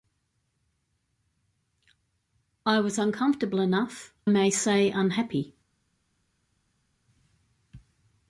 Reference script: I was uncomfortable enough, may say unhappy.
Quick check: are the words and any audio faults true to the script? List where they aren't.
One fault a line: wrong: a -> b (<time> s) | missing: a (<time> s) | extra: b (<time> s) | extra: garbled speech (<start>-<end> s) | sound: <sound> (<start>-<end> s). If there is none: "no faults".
no faults